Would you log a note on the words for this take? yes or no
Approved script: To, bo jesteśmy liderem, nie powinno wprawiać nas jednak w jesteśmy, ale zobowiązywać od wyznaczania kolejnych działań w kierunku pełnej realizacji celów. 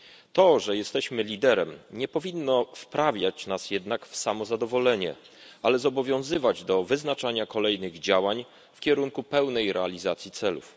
yes